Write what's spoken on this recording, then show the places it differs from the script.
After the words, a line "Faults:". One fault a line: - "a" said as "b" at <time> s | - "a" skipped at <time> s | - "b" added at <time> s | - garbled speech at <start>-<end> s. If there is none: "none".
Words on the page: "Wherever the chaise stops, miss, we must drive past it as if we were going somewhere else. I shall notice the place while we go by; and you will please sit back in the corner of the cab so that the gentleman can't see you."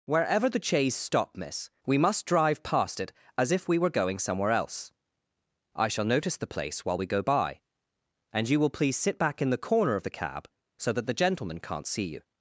"Wherever the chaise stop, miss, we must drive past it as if we were going somewhere else. I shall notice the place while we go by; and you will please sit back in the corner of the cab so that the gentleman can't see you."
Faults:
- "stops" said as "stop" at 0.9 s